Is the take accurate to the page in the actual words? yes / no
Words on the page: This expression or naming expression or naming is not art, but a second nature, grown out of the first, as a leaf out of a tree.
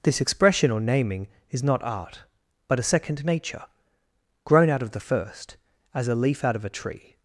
no